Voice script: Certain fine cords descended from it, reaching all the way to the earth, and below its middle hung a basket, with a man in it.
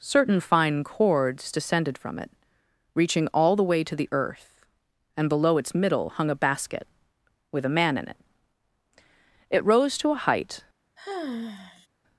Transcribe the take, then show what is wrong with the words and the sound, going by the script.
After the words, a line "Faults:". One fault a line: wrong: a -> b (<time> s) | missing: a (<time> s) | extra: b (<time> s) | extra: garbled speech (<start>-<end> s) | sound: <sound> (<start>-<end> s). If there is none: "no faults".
Certain fine cords descended from it, reaching all the way to the earth, and below its middle hung a basket, with a man in it. It rose to a height
Faults:
extra: It rose to a height (9.5 s)
sound: sigh (11.0-11.9 s)